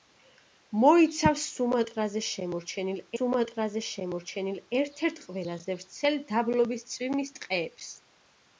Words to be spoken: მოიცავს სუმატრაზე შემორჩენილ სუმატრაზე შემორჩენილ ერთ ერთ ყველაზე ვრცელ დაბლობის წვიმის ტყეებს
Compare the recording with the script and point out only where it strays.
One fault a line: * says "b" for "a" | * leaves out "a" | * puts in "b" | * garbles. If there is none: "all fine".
all fine